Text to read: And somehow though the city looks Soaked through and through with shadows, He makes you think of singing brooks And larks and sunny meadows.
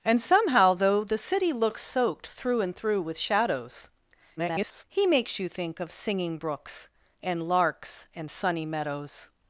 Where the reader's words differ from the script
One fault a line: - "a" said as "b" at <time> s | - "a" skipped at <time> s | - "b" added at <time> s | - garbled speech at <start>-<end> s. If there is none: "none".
- garbled speech at 4.4-4.8 s